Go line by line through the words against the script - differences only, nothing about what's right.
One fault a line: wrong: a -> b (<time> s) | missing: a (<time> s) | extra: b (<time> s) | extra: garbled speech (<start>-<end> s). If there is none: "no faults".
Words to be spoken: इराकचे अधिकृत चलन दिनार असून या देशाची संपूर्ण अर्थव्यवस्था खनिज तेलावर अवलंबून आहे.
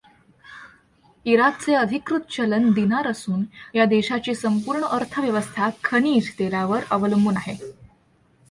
no faults